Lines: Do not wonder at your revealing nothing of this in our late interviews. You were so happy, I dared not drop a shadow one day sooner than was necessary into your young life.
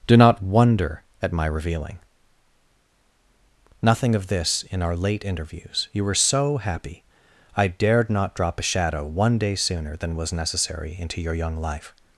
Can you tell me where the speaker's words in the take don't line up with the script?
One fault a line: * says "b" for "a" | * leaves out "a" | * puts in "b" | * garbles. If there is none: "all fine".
* says "my" for "your"